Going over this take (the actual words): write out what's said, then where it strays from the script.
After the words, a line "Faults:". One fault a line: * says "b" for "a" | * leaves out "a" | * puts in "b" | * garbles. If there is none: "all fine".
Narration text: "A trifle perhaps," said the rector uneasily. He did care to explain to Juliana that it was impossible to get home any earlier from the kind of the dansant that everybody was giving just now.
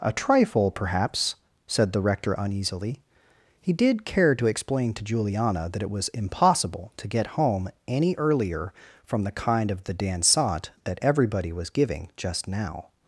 "A trifle perhaps," said the rector uneasily. He did care to explain to Juliana that it was impossible to get home any earlier from the kind of the dansant that everybody was giving just now.
Faults:
all fine